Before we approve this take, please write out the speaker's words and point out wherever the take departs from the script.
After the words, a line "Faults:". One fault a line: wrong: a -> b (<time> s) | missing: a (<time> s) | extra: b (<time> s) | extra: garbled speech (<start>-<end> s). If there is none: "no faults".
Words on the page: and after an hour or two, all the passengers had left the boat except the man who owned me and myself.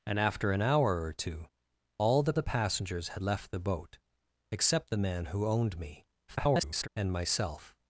and after an hour or two, all the the passengers had left the boat except the man who owned me [garbled] and myself.
Faults:
extra: the (2.3 s)
extra: garbled speech (6.3-6.9 s)